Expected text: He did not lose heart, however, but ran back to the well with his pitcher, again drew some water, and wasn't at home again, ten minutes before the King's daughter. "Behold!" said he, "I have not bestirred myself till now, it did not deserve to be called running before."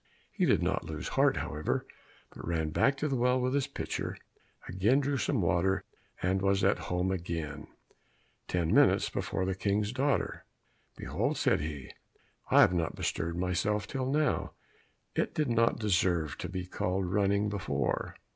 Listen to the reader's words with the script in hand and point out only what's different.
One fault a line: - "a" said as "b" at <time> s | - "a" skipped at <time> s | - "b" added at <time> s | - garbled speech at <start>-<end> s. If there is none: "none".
- "wasn't" said as "was" at 6.4 s